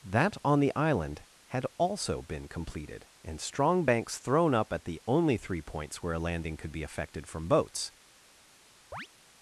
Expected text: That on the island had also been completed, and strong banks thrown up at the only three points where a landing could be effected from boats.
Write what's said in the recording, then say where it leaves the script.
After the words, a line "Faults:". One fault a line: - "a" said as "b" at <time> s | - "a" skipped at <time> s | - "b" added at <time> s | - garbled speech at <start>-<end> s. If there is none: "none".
That on the island had also been completed, and strong banks thrown up at the only three points where a landing could be effected from boats.
Faults:
none